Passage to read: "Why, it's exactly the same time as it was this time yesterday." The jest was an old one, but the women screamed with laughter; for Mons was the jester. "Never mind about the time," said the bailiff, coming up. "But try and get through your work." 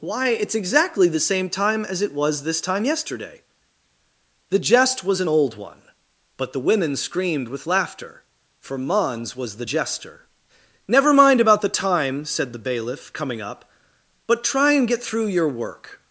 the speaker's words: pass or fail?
pass